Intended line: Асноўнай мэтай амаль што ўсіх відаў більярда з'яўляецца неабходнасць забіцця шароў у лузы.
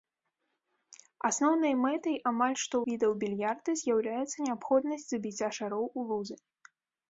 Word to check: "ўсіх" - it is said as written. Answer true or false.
false